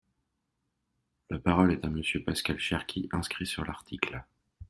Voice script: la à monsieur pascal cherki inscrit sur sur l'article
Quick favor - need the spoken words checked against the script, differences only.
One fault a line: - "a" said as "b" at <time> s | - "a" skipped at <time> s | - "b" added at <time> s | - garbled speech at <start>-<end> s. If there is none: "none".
- "parole est" added at 1.4 s
- "sur" skipped at 3.6 s